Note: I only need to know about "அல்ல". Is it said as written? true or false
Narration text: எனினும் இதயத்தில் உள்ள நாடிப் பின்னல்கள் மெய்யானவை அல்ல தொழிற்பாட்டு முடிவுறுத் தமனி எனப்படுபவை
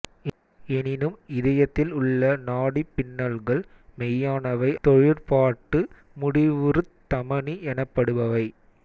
false